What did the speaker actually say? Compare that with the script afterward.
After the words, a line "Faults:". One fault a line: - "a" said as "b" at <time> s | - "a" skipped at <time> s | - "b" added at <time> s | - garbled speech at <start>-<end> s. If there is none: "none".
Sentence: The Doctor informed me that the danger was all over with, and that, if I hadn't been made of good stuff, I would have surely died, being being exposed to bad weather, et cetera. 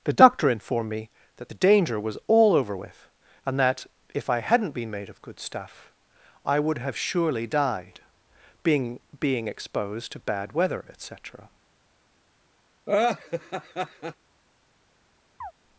The Doctor informed me that the danger was all over with, and that, if I hadn't been made of good stuff, I would have surely died, being being exposed to bad weather, et cetera.
Faults:
none